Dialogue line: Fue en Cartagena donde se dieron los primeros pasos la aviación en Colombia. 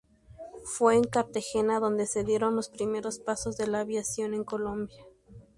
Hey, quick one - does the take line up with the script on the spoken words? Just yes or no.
no